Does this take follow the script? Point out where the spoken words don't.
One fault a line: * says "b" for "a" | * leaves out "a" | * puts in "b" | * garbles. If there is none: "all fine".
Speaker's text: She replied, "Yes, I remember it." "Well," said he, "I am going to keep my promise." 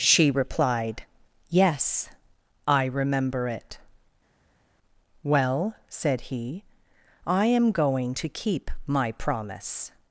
all fine